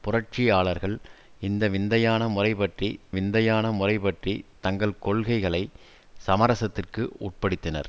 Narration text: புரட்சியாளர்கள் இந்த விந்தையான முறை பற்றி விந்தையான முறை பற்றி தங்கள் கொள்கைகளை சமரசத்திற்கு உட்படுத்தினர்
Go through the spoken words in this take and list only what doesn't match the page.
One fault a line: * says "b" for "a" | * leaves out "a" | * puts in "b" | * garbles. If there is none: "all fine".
all fine